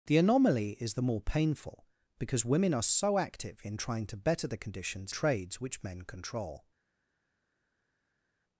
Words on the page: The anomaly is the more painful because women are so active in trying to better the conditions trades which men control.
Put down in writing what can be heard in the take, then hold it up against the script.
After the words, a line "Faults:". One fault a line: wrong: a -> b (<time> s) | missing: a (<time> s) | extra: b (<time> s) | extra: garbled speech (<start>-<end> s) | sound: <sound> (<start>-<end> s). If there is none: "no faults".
The anomaly is the more painful because women are so active in trying to better the conditions trades which men control.
Faults:
no faults